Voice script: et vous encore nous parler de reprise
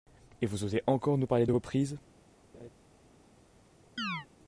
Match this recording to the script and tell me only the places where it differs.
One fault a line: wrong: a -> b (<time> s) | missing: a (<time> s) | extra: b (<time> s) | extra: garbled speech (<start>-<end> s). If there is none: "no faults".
extra: osez (0.6 s)